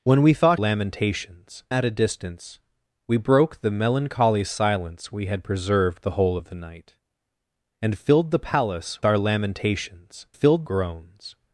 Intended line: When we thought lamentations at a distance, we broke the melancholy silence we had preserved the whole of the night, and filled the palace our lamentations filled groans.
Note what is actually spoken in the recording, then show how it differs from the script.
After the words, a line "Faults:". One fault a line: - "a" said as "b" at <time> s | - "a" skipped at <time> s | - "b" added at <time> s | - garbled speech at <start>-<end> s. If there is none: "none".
When we thought lamentations at a distance, we broke the melancholy silence we had preserved the whole of the night, and filled the palace our lamentations filled groans.
Faults:
none